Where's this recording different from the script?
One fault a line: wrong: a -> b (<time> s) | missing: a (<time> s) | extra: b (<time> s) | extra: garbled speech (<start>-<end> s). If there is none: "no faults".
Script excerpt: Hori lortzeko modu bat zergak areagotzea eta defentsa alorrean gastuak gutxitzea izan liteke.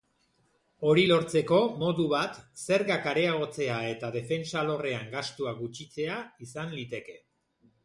no faults